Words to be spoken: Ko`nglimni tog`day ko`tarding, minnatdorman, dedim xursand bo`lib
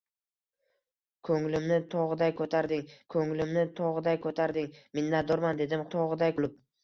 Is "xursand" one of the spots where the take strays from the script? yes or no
yes